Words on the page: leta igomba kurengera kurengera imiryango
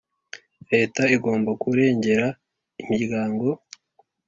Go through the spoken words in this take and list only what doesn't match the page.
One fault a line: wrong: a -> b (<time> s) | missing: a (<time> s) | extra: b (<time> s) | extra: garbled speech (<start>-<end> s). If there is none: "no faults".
missing: kurengera (2.3 s)